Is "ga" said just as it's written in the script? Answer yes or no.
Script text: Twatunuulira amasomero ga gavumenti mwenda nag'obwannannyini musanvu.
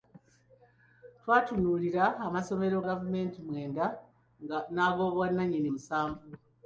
no